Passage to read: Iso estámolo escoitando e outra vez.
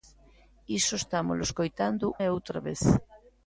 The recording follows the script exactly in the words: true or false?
true